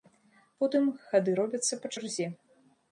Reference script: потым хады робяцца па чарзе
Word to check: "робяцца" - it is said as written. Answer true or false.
true